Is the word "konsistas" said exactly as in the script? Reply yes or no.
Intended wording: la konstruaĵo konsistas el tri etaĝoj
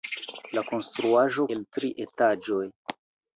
no